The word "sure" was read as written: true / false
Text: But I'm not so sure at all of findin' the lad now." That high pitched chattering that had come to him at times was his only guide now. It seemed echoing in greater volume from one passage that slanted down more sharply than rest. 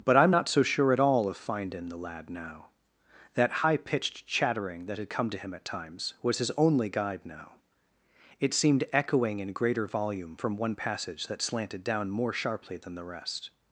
true